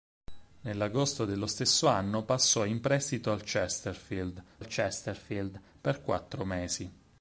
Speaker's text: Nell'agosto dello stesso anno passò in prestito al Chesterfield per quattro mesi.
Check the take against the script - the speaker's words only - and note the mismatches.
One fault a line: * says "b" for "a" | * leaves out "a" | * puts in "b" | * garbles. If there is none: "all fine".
* puts in "al Chesterfield"